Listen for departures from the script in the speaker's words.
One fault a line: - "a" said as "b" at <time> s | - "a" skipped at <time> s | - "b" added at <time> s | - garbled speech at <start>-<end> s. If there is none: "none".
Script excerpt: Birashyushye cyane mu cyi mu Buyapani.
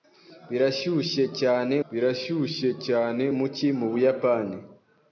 - "birashyushye cyane" added at 1.9 s